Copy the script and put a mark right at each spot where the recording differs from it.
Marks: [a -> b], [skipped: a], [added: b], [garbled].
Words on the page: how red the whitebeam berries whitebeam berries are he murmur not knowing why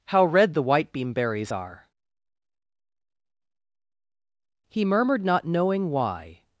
how red the whitebeam berries [skipped: whitebeam berries] are he [murmur -> murmured] not knowing why